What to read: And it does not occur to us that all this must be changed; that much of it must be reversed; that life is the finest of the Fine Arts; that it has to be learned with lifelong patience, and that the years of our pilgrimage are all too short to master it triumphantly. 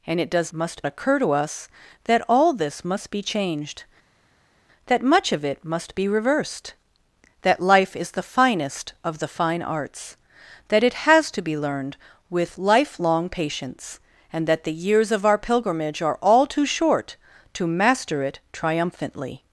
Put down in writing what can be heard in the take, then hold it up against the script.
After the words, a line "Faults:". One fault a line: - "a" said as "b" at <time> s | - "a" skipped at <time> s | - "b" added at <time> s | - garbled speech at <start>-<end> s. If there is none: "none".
And it does must occur to us that all this must be changed; that much of it must be reversed; that life is the finest of the Fine Arts; that it has to be learned with lifelong patience, and that the years of our pilgrimage are all too short to master it triumphantly.
Faults:
- "not" said as "must" at 0.5 s